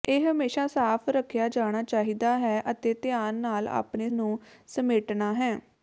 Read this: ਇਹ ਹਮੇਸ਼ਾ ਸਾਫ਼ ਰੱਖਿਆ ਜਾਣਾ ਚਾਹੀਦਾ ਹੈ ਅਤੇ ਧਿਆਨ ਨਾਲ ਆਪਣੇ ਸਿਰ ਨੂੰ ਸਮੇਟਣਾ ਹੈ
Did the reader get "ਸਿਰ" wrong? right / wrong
wrong